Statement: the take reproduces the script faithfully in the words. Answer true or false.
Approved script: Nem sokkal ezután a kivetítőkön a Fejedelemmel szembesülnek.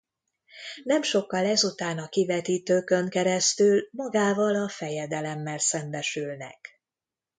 false